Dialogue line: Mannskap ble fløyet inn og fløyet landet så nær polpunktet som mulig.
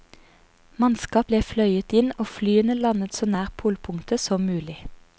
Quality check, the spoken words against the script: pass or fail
fail